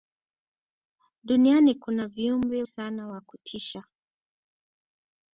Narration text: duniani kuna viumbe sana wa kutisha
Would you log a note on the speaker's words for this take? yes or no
no